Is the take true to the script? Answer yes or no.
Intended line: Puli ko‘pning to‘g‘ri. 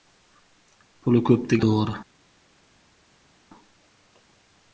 yes